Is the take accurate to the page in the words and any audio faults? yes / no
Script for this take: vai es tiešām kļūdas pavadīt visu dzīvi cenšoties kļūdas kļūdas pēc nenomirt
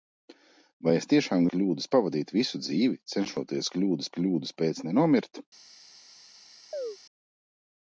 no